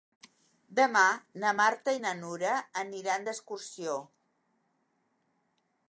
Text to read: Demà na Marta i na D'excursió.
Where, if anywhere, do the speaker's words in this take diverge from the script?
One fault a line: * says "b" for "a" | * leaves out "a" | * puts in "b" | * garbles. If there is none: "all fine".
* puts in "Nura aniran"